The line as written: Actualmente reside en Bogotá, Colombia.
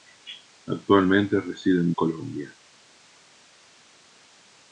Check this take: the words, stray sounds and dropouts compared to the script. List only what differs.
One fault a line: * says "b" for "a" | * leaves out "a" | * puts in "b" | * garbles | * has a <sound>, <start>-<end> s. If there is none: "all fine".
* leaves out "Bogotá"